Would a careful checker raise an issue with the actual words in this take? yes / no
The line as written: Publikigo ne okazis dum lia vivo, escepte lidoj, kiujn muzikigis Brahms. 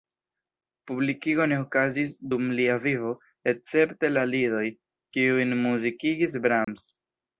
yes